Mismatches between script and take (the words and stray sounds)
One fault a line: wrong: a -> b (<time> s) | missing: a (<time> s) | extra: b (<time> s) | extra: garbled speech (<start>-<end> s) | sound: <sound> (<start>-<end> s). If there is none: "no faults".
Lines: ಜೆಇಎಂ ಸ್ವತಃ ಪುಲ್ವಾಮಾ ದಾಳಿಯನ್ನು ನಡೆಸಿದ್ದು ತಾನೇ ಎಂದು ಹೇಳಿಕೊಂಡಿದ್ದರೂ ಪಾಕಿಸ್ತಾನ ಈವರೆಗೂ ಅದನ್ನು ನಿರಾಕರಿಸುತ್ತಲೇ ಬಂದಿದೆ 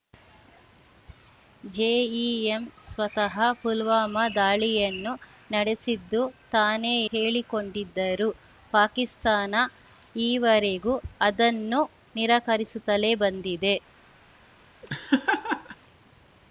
missing: ಎಂದು (7.0 s)
sound: laugh (14.8-15.8 s)